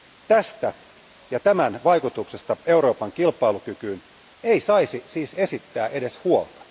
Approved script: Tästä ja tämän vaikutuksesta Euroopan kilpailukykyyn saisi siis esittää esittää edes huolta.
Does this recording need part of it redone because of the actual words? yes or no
yes